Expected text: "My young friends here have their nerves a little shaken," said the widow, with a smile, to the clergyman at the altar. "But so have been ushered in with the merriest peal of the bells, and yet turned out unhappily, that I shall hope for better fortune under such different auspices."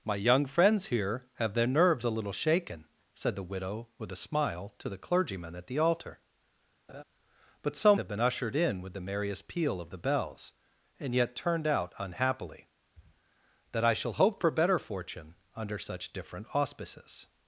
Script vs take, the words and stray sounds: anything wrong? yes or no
yes